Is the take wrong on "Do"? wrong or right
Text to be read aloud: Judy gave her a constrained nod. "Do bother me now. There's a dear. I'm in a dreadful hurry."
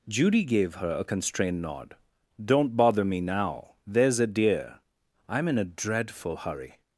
wrong